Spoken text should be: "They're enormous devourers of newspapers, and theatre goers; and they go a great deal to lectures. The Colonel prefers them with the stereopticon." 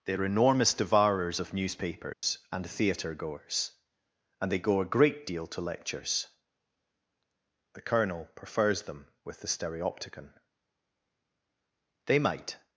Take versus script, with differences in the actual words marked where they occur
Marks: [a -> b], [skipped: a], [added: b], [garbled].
"They're enormous devourers of newspapers, and theatre goers; and they go a great deal to lectures. The Colonel prefers them with the stereopticon." [added: They might]